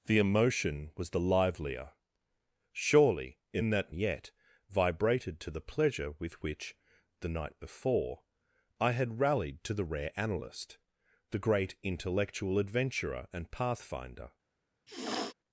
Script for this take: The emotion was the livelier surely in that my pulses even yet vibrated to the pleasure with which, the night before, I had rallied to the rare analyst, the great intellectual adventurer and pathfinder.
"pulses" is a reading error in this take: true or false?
true